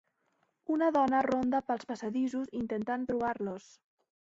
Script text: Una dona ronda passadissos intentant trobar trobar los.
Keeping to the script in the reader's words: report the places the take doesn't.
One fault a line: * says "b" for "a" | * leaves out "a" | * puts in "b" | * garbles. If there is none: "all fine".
* puts in "pels"
* leaves out "trobar"